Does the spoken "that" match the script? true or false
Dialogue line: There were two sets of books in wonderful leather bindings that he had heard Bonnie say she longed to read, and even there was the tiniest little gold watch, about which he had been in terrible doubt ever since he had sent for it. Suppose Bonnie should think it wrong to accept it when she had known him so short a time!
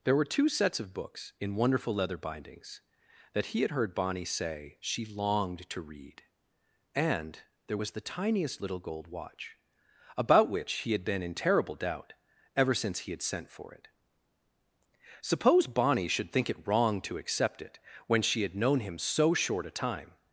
true